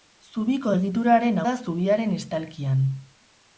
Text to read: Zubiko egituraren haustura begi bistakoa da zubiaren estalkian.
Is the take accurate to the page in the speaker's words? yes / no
no